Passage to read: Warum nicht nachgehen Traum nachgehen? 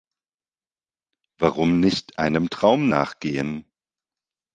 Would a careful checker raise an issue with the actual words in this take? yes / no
yes